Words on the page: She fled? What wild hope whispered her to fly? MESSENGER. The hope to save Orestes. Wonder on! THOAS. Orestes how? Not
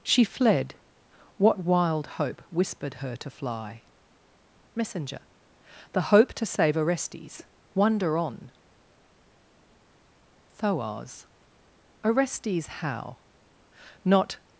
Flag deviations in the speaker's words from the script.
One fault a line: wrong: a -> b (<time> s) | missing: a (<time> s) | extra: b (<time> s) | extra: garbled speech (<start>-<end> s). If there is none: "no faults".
no faults